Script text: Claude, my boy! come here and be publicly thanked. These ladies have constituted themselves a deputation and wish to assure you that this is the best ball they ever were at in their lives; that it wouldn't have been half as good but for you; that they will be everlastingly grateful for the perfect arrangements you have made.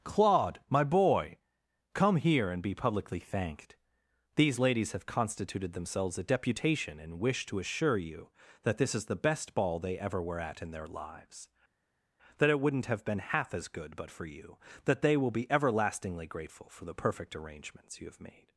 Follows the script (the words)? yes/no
yes